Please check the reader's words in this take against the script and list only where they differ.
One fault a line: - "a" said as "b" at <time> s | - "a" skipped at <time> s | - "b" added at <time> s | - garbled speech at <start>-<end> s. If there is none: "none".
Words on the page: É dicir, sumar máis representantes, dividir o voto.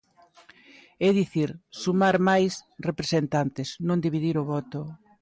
- "non" added at 3.9 s